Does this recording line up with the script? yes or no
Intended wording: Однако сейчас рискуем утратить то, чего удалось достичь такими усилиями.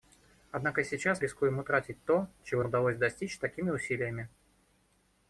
yes